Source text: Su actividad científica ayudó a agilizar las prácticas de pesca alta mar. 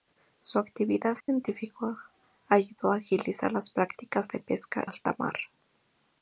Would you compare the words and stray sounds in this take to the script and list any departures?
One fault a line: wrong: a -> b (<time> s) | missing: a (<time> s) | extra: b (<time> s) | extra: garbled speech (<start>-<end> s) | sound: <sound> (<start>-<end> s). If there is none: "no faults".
sound: dropout (1.2-1.3 s)